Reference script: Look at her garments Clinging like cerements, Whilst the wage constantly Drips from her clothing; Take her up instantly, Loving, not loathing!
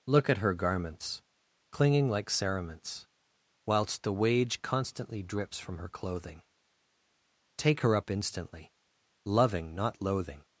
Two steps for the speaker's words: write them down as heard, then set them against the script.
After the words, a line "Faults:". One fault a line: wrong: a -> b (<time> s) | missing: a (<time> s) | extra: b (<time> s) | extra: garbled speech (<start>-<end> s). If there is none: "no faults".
Look at her garments Clinging like cerements, Whilst the wage constantly Drips from her clothing; Take her up instantly, Loving, not loathing!
Faults:
no faults